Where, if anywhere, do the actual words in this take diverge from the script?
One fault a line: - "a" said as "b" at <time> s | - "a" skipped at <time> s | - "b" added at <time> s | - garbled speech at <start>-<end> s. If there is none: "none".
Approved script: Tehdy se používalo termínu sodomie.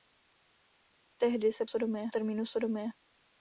- "používalo" said as "sodomie" at 1.6 s